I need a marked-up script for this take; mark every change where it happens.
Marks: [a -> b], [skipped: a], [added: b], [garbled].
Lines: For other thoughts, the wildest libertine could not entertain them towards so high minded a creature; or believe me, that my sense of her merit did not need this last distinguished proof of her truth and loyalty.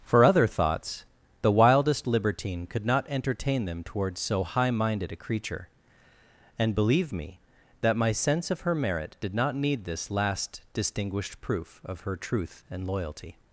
For other thoughts, the wildest libertine could not entertain them towards so high minded a creature; [or -> and] believe me, that my sense of her merit did not need this last distinguished proof of her truth and loyalty.